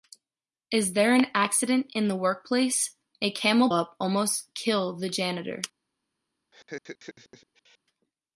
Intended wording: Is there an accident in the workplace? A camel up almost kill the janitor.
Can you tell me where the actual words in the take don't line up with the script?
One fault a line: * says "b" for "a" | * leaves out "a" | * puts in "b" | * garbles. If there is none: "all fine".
all fine